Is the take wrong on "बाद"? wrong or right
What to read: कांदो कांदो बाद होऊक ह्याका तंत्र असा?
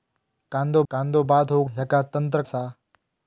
right